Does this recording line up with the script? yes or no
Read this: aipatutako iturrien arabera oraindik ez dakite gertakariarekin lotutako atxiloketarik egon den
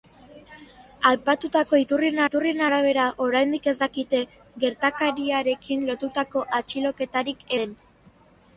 no